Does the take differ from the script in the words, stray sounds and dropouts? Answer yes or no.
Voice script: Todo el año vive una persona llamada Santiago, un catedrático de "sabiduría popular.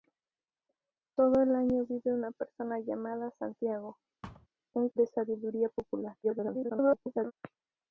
yes